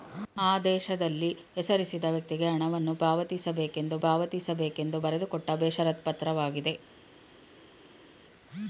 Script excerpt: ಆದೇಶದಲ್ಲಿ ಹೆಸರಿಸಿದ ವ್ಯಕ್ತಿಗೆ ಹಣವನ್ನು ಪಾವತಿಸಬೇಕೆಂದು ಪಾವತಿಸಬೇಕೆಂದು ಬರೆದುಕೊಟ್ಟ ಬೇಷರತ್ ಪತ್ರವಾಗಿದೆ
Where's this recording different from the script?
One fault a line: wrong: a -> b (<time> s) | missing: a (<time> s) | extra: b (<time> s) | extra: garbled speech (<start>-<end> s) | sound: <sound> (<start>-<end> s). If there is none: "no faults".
no faults